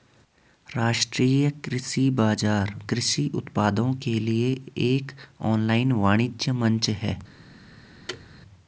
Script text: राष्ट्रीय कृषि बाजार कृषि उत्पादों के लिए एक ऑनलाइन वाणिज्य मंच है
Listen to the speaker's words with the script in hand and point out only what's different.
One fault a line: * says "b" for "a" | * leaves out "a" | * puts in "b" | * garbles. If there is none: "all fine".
all fine